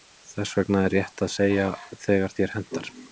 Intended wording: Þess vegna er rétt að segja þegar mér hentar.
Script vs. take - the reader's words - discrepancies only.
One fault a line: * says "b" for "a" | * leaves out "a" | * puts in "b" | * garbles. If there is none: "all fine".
* says "þér" for "mér"